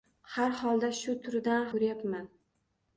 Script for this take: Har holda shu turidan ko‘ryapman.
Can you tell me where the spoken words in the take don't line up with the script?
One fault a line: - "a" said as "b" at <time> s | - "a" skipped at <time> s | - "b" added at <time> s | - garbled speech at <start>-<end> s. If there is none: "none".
none